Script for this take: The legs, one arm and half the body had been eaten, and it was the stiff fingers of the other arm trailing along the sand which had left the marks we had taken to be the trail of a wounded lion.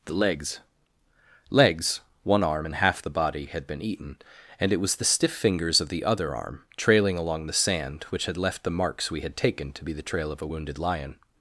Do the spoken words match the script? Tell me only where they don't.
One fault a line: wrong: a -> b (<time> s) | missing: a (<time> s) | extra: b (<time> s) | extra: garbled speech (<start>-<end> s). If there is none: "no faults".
extra: legs (1.5 s)